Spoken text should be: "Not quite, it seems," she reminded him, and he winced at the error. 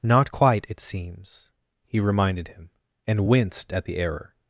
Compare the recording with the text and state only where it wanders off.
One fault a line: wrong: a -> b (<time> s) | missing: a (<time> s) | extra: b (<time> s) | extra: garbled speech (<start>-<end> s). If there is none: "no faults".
wrong: she -> he (1.8 s)
missing: he (3.3 s)